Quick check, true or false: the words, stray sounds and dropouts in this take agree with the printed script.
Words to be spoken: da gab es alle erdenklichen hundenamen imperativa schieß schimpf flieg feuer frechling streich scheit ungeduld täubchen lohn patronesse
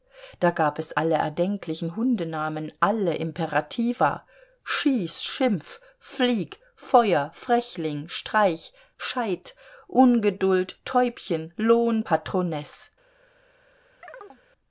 false